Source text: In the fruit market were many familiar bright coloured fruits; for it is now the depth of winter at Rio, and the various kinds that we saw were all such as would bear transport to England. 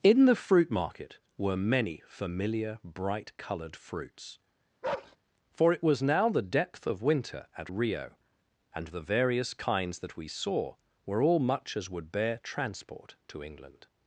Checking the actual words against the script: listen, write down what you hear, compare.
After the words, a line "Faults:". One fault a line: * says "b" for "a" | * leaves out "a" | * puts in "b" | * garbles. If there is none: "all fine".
In the fruit market were many familiar bright coloured fruits; for it was now the depth of winter at Rio, and the various kinds that we saw were all much as would bear transport to England.
Faults:
* says "was" for "is"
* says "much" for "such"